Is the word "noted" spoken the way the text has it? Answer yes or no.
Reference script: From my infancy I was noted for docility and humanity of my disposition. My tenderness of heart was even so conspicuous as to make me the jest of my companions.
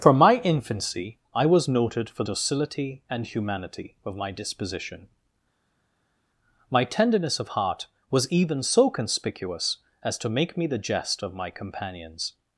yes